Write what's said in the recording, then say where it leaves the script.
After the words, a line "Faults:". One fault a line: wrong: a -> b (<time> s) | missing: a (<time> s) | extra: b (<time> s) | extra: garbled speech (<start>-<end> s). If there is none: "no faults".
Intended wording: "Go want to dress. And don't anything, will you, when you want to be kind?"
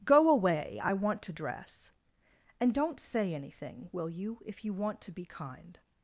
"Go away; I want to dress. And don't say anything, will you, if you want to be kind?"
Faults:
extra: away I (0.3 s)
extra: say (3.0 s)
wrong: when -> if (4.5 s)